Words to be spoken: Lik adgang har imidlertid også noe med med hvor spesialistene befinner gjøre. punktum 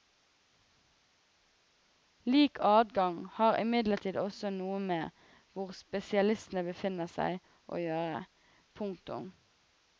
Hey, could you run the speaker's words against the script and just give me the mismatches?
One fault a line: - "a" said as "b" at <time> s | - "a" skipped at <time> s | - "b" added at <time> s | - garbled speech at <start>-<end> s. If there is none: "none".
- "med" skipped at 5.2 s
- "seg å" added at 7.2 s